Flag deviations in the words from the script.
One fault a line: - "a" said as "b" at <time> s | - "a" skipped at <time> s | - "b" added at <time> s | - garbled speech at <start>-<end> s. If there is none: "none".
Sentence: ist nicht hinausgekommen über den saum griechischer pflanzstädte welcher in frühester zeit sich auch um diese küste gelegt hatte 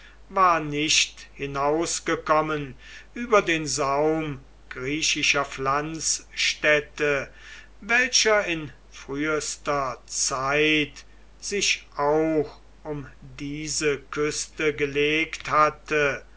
- "ist" said as "war" at 0.3 s